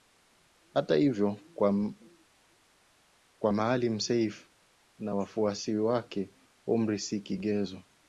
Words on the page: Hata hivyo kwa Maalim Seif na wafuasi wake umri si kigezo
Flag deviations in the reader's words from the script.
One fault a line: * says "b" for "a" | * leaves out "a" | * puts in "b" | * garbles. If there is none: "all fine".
all fine